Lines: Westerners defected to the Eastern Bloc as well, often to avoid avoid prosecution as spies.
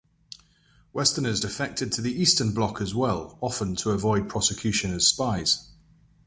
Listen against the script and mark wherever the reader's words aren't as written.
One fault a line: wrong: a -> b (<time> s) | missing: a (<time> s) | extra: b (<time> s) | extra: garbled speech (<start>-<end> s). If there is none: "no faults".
missing: avoid (4.3 s)